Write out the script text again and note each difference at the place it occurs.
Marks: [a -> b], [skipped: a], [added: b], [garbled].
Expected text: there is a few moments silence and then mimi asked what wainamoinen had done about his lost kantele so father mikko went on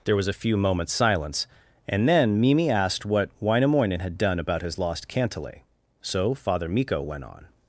there [is -> was] a few moments silence and then mimi asked what wainamoinen had done about his lost kantele so father mikko went on